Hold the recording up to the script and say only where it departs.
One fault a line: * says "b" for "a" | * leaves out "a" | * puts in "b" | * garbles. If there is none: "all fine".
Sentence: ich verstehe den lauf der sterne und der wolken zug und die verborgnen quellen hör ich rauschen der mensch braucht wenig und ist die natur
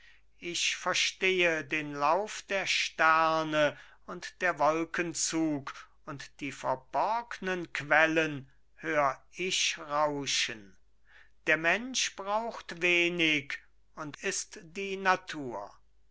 all fine